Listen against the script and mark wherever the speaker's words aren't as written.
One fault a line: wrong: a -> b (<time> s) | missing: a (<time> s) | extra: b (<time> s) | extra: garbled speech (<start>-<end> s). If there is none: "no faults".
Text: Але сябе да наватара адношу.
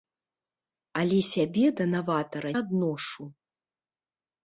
no faults